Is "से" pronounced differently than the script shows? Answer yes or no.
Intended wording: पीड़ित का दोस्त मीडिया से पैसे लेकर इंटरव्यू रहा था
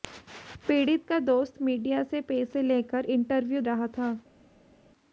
no